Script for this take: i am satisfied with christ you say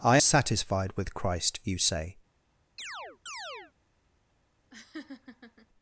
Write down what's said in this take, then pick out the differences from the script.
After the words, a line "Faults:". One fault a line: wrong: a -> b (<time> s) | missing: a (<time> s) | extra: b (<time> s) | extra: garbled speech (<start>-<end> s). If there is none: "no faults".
i satisfied with christ you say
Faults:
missing: am (0.2 s)